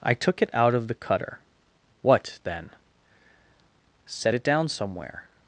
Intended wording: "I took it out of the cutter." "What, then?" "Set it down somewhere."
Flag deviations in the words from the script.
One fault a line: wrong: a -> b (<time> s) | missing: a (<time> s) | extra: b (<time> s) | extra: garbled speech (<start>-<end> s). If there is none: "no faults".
no faults